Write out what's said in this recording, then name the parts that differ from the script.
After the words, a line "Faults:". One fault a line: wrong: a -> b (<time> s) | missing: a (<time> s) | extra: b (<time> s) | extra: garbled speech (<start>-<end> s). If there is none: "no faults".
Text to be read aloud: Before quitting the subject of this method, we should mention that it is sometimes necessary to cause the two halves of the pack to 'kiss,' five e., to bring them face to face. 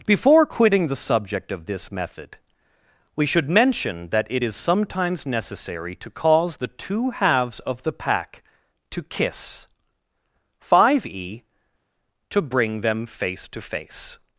Before quitting the subject of this method, we should mention that it is sometimes necessary to cause the two halves of the pack to 'kiss,' five e., to bring them face to face.
Faults:
no faults